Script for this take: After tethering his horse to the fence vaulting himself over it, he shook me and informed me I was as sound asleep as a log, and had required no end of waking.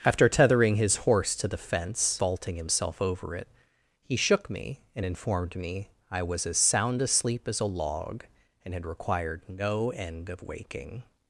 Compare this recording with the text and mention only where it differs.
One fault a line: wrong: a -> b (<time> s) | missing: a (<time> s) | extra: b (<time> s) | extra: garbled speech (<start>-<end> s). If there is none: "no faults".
no faults